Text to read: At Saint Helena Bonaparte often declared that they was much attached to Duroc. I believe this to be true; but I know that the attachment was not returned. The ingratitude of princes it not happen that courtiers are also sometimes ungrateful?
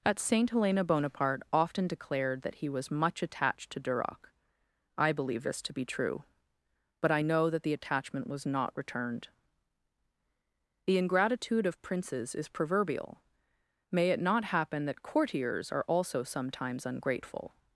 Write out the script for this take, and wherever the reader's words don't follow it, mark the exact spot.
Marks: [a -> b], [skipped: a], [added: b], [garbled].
At Saint Helena Bonaparte often declared that [they -> he] was much attached to Duroc. I believe this to be true; but I know that the attachment was not returned. The ingratitude of princes [added: is proverbial May] it not happen that courtiers are also sometimes ungrateful?